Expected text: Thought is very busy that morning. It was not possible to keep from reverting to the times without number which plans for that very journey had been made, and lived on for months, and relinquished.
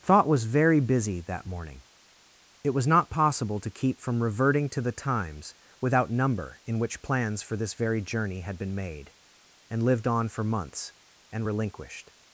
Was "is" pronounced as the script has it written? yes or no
no